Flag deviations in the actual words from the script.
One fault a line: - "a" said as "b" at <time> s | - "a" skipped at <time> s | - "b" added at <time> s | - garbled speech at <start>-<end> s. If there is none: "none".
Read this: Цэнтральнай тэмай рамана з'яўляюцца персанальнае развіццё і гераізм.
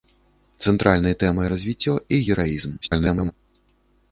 - "рамана з'яўляюцца персанальнае" skipped at 1.5 s
- garbled speech at 2.8-3.3 s